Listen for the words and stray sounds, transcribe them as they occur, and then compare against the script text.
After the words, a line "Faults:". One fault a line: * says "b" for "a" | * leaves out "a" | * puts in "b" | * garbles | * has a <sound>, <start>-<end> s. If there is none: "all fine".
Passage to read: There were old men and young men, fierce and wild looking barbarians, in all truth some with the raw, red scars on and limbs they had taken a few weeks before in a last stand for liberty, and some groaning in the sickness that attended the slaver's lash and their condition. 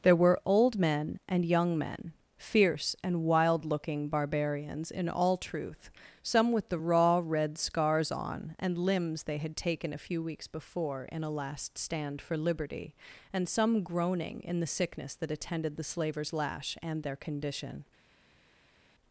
There were old men and young men, fierce and wild looking barbarians, in all truth some with the raw, red scars on and limbs they had taken a few weeks before in a last stand for liberty, and some groaning in the sickness that attended the slaver's lash and their condition.
Faults:
all fine